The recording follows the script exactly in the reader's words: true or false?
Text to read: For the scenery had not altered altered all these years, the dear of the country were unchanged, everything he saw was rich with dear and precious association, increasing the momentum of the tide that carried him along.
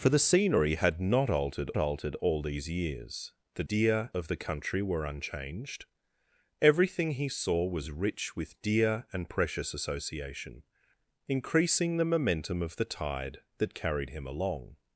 true